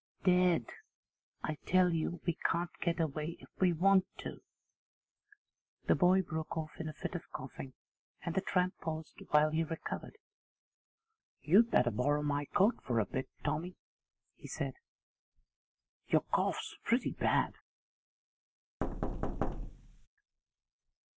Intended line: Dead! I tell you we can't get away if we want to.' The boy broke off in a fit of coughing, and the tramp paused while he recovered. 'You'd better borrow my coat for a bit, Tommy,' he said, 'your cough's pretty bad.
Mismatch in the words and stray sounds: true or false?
true